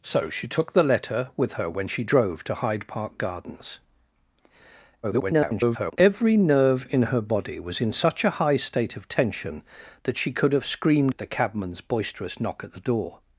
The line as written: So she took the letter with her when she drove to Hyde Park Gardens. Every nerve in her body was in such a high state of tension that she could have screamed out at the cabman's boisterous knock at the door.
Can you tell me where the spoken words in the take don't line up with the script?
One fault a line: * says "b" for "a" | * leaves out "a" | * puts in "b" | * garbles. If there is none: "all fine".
* garbles
* leaves out "out"